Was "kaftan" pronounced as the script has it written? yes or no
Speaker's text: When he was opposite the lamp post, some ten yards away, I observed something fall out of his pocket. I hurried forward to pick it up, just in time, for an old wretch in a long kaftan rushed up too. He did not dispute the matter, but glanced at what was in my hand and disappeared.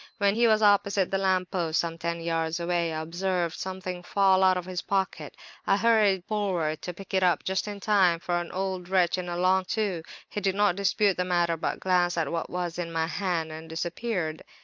no